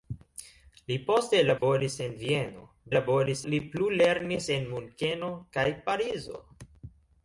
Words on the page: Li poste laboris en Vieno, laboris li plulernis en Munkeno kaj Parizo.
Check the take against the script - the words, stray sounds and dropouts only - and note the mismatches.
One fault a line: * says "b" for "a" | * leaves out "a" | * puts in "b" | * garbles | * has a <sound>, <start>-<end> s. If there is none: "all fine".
* has a dropout, 1.6-1.6 s